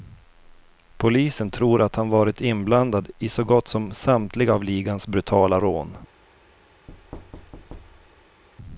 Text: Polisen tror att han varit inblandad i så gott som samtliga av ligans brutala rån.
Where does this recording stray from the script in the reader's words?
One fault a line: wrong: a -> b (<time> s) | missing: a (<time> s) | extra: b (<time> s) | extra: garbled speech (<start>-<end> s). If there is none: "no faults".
no faults